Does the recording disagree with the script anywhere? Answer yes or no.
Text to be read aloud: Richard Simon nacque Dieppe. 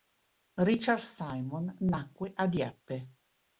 yes